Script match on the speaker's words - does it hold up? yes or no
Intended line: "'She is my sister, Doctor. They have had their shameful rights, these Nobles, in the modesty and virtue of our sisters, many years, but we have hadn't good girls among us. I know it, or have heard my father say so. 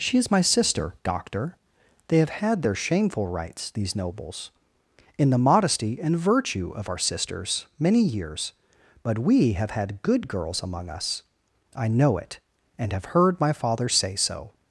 no